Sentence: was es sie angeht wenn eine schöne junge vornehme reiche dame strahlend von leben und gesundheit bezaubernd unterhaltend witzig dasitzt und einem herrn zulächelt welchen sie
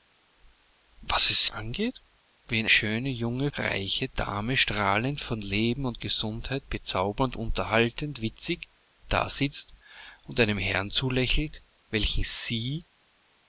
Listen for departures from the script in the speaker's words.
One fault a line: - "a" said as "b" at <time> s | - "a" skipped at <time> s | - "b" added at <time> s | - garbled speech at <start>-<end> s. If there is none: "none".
- "sie" skipped at 1.4 s
- "eine" skipped at 2.7 s
- "vornehme" skipped at 3.5 s